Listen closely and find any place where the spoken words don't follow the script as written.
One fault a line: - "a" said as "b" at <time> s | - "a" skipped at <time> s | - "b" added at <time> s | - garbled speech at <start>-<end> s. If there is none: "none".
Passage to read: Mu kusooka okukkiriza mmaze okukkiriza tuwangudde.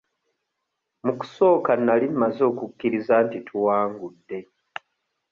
- "okukkiriza" said as "nali" at 1.9 s
- "nti" added at 3.2 s